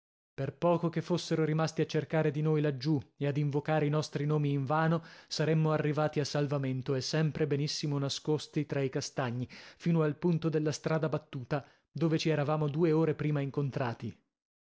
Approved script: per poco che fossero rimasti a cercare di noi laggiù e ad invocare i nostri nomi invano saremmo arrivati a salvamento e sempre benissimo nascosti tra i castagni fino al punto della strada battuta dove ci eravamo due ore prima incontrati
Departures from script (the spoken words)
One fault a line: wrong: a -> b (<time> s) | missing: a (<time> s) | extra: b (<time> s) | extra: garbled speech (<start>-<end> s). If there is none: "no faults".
no faults